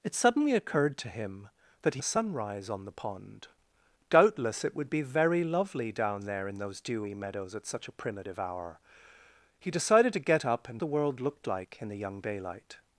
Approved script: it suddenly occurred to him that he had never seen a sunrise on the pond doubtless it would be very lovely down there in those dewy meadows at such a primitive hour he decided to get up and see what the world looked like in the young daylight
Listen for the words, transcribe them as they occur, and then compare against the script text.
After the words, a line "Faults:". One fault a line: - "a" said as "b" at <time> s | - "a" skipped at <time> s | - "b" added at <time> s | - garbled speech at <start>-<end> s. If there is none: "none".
it suddenly occurred to him that he a sunrise on the pond doubtless it would be very lovely down there in those dewy meadows at such a primitive hour he decided to get up and the world looked like in the young daylight
Faults:
- "had never seen" skipped at 2.0 s
- "see what" skipped at 10.8 s